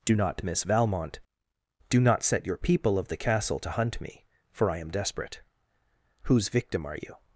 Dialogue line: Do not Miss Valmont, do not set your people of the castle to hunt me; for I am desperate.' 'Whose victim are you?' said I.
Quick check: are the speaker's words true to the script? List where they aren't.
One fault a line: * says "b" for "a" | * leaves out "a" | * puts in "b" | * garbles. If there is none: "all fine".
* leaves out "said I"